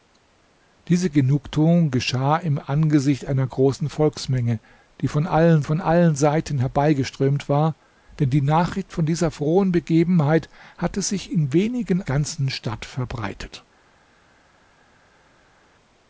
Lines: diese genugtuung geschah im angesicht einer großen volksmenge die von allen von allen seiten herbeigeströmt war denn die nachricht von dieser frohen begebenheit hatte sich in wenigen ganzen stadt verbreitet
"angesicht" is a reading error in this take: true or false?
false